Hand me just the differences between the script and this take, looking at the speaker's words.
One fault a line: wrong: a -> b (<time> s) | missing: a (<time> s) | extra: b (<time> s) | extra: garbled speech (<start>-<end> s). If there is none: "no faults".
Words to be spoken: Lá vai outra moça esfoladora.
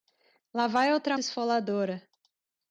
missing: moça (1.1 s)